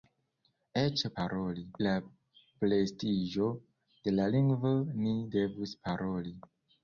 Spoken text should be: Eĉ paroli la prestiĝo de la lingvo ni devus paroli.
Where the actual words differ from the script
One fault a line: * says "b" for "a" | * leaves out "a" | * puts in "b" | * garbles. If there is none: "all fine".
all fine